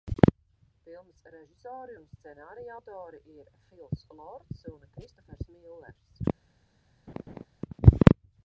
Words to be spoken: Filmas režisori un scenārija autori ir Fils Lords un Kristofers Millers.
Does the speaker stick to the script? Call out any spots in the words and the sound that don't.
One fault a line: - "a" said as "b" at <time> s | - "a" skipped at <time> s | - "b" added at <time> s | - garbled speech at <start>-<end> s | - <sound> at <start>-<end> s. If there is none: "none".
- laugh at 7.1-7.5 s